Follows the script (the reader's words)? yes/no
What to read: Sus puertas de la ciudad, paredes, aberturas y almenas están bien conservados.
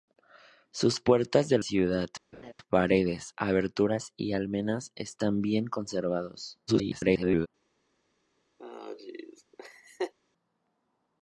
no